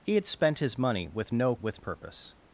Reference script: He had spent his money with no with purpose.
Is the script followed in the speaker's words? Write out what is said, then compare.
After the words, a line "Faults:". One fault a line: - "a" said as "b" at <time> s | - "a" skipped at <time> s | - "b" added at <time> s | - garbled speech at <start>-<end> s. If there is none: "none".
He had spent his money with no with purpose.
Faults:
none